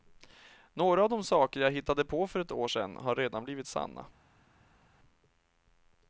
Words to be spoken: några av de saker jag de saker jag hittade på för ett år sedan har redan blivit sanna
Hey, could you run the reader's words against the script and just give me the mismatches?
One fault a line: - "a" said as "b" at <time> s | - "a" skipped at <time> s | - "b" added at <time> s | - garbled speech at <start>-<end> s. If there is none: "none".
- "de saker jag" skipped at 1.7 s